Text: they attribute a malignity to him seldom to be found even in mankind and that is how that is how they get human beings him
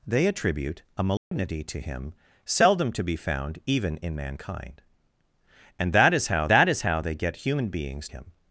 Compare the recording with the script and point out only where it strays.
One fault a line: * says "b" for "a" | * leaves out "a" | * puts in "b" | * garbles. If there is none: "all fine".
all fine